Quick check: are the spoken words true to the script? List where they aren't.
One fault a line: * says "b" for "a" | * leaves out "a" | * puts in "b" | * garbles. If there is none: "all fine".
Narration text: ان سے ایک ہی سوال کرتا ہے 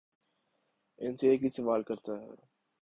all fine